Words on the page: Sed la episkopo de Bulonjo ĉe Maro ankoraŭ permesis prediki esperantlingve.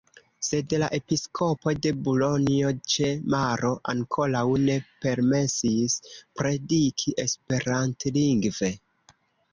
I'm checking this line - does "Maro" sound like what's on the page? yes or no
yes